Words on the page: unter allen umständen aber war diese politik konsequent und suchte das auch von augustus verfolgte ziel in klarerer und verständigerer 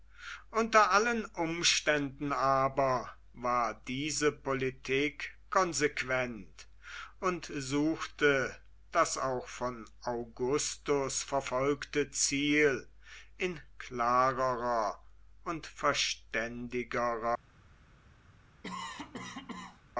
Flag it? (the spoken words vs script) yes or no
no